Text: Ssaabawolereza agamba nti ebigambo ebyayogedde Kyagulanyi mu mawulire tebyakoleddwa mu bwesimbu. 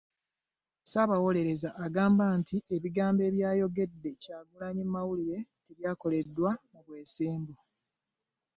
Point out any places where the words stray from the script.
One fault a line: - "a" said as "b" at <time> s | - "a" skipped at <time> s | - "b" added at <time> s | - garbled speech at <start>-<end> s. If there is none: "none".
none